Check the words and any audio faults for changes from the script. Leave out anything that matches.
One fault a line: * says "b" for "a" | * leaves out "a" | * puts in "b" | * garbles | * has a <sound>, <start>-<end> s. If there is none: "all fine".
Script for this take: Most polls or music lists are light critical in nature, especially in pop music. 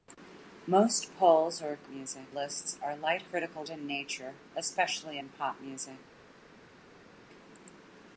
all fine